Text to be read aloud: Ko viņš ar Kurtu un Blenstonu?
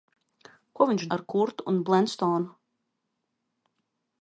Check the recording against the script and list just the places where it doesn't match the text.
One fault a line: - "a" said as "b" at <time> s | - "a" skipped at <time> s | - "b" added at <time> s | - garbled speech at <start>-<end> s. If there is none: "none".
none